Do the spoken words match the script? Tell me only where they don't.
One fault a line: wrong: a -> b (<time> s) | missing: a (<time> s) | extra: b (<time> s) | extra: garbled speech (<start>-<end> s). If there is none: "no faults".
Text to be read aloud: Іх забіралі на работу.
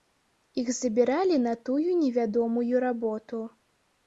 extra: тую невядомую (1.7 s)